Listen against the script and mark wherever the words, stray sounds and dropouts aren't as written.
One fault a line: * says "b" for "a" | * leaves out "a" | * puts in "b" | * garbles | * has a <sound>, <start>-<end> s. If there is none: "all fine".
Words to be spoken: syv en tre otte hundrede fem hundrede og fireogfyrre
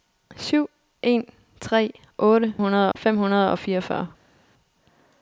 all fine